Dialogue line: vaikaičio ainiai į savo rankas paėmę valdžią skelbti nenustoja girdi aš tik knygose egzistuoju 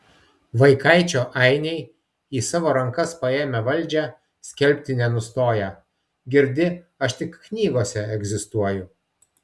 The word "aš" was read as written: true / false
true